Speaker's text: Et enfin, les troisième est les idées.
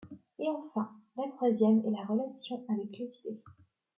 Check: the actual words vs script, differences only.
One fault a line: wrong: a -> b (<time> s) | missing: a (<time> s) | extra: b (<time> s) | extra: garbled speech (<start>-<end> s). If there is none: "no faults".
wrong: les -> la (1.1 s)
extra: la relation avec (1.9 s)